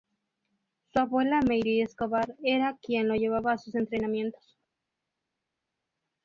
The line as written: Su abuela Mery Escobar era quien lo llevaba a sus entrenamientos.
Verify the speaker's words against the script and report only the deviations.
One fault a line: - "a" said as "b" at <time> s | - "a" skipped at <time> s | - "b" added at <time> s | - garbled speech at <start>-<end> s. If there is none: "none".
none